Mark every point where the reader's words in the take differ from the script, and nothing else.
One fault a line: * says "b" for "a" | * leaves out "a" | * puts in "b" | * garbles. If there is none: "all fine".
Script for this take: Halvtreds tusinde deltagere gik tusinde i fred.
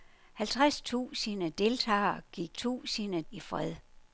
all fine